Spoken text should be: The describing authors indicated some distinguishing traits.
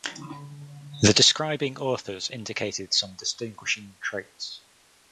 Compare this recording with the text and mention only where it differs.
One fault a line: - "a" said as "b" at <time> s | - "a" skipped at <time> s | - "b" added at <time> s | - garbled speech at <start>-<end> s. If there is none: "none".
none